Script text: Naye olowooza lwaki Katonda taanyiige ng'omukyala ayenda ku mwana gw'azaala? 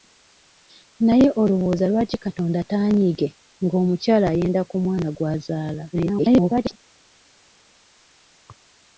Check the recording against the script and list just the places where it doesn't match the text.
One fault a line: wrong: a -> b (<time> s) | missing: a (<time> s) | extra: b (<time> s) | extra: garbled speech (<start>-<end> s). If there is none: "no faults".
extra: garbled speech (5.9-6.8 s)